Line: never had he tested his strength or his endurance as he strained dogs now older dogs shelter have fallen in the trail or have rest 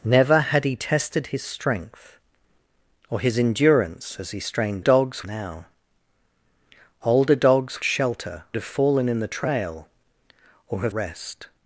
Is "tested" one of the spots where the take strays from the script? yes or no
no